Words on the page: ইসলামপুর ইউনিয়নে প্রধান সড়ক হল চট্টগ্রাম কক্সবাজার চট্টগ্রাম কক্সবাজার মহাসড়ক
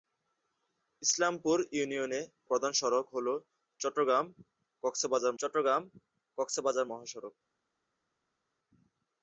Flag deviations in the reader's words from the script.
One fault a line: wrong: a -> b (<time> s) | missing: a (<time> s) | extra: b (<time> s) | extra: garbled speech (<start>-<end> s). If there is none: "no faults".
no faults